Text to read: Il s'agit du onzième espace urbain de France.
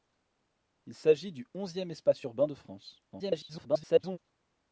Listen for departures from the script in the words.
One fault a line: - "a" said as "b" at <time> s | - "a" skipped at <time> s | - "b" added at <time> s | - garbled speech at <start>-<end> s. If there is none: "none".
- garbled speech at 3.1-4.2 s